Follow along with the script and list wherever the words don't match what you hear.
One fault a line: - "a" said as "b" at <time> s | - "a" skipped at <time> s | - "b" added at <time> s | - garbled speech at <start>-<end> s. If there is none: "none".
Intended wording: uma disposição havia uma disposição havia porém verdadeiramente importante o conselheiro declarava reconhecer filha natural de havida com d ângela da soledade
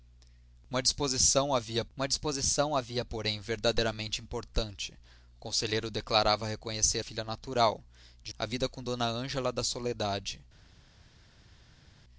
none